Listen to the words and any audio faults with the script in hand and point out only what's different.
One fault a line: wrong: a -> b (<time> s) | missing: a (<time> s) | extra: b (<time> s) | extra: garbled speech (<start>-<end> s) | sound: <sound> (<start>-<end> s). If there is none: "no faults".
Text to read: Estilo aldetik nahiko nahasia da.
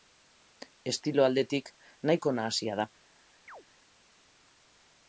sound: chirp (3.5-3.6 s)